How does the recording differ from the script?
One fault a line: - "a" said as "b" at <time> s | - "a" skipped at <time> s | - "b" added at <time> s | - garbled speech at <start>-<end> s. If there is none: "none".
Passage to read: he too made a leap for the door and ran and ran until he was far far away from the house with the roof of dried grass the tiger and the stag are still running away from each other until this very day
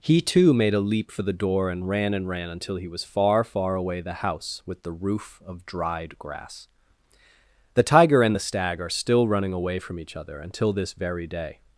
- "from" skipped at 4.0 s